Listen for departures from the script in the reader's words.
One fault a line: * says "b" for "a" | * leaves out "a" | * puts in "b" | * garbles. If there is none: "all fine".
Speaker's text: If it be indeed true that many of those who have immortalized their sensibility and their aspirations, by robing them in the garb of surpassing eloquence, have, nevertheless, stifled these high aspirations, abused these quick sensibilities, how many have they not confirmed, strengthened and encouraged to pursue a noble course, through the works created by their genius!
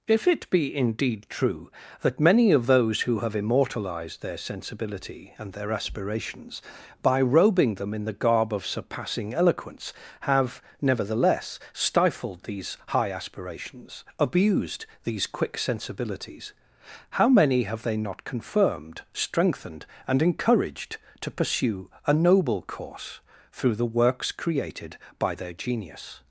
all fine